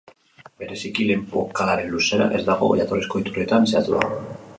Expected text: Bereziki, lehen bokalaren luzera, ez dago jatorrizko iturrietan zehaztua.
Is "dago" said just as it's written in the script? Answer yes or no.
yes